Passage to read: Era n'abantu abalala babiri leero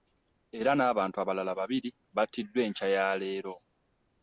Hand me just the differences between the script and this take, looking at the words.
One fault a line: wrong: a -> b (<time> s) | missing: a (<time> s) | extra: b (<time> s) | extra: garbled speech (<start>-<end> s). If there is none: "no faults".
extra: battiddwa enkya ya (2.2 s)